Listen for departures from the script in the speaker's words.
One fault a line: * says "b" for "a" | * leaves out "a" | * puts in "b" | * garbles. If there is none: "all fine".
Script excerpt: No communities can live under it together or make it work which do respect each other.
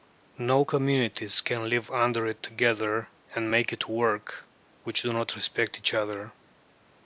* says "and" for "or"
* puts in "not"